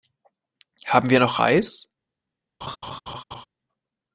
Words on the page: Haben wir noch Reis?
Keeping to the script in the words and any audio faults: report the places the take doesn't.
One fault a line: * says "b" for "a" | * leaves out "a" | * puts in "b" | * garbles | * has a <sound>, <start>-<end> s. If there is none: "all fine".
* has a laugh, 2.6-3.4 s